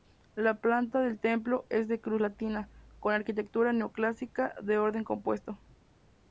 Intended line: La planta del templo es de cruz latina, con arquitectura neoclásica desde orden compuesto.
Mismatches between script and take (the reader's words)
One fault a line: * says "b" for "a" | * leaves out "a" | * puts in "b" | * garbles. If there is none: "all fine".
* says "de" for "desde"